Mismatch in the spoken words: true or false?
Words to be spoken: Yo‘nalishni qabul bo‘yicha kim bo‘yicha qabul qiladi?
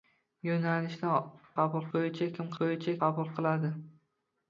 false